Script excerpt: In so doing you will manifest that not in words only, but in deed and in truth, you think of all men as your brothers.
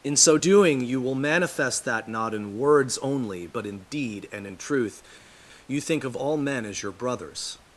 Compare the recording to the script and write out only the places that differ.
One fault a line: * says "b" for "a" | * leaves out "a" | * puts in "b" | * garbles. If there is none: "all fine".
all fine